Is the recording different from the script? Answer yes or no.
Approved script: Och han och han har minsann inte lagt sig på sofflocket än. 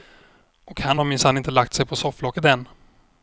yes